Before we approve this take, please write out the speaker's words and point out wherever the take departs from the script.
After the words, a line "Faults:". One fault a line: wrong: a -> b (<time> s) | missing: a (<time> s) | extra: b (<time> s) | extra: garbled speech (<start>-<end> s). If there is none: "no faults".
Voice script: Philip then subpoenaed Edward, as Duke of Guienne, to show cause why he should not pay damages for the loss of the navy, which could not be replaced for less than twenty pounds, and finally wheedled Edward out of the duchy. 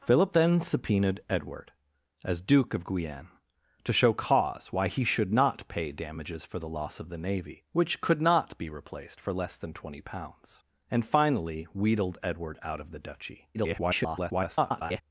Philip then subpoenaed Edward, as Duke of Guienne, to show cause why he should not pay damages for the loss of the navy, which could not be replaced for less than twenty pounds, and finally wheedled Edward out of the duchy. [garbled]
Faults:
extra: garbled speech (13.5-15.0 s)